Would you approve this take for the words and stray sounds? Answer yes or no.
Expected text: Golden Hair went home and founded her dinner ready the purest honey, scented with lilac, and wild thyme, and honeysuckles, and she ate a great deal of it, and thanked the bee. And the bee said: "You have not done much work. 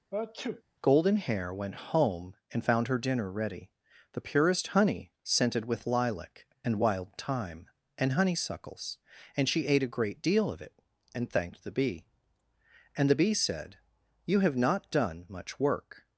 no